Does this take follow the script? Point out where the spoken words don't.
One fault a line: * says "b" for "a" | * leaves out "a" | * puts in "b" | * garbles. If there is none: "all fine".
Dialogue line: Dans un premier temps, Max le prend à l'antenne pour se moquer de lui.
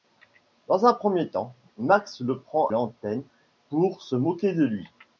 * leaves out "à"